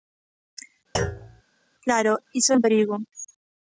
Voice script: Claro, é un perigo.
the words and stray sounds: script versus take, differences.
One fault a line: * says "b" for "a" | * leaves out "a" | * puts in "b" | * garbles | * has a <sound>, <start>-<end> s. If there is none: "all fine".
* has a thud, 0.9-1.4 s
* puts in "iso"